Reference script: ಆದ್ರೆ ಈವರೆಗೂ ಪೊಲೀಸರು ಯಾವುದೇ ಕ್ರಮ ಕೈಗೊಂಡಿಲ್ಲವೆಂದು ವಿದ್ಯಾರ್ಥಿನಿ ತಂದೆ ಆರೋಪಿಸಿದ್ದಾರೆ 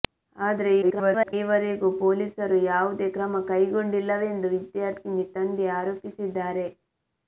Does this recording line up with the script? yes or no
no